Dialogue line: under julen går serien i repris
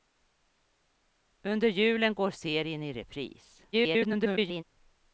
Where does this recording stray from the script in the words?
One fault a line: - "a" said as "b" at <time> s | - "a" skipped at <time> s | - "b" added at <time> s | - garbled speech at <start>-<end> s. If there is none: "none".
- garbled speech at 3.7-4.6 s